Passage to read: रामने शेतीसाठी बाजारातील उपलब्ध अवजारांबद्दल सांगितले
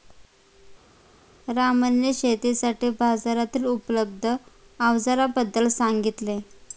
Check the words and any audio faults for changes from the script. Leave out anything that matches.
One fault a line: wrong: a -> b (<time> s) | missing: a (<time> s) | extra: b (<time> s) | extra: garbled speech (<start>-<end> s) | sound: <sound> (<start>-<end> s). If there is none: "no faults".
no faults